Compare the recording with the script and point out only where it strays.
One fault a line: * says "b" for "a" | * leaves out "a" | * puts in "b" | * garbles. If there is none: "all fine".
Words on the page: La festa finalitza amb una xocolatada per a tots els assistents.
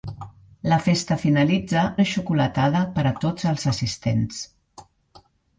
* leaves out "amb"